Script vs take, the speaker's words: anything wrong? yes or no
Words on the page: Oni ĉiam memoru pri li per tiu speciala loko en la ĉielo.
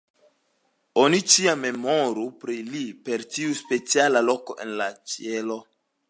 no